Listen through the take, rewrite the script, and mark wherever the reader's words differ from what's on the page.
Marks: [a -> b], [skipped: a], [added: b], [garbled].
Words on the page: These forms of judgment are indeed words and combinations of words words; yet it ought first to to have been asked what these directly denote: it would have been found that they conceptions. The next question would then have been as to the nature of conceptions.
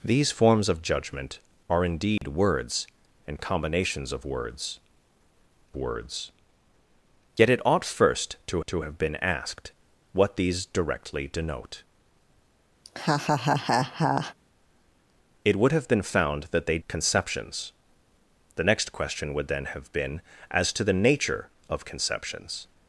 These forms of judgment are indeed words and combinations of words words; yet it ought first to to have been asked what these directly denote: it would have been found that they conceptions. The next question would then have been as to the nature of conceptions.